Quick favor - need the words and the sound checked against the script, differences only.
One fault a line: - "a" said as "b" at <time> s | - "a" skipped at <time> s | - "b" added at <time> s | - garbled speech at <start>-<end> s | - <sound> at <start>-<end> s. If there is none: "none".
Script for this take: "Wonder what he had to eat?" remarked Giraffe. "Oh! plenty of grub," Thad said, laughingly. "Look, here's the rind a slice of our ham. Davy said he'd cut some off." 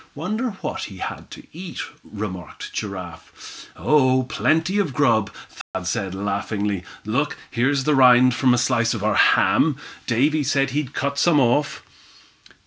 - dropout at 5.6-5.7 s
- "from" added at 8.3 s